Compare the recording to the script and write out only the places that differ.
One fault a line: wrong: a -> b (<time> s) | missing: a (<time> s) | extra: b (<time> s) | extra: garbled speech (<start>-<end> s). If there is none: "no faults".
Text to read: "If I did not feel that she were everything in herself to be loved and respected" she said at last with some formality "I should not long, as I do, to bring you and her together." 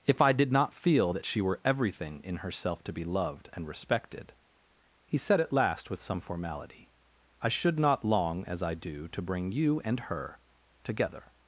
wrong: she -> he (5.0 s)